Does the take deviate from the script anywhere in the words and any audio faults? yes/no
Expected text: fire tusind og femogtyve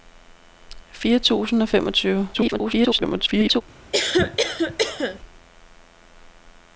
yes